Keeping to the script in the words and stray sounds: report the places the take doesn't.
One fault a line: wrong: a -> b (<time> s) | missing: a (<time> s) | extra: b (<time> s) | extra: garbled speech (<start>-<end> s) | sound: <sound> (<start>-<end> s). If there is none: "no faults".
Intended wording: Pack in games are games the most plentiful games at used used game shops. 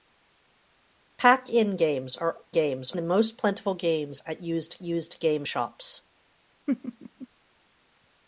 sound: laugh (6.7-7.3 s)